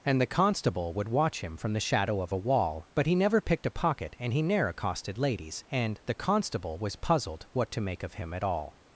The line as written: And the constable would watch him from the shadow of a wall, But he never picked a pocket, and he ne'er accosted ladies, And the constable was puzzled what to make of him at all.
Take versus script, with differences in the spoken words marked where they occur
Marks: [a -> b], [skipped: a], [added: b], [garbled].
And the constable would watch him from the shadow of a wall, But he never picked a pocket, and he ne'er accosted ladies, And the constable was puzzled what to make of him at all.